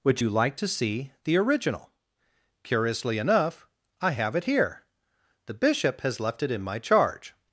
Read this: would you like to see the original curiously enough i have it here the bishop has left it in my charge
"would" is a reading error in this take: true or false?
false